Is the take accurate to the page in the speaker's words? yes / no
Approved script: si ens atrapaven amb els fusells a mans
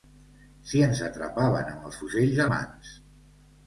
yes